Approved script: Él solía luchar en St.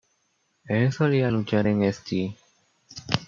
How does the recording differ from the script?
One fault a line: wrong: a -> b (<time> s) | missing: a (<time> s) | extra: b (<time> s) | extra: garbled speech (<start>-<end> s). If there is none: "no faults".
no faults